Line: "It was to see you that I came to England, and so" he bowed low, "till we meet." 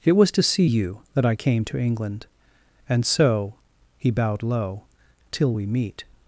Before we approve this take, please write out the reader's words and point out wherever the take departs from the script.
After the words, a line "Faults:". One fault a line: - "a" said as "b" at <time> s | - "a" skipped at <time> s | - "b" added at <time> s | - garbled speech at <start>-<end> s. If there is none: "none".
"It was to see you that I came to England, and so" he bowed low, "till we meet."
Faults:
none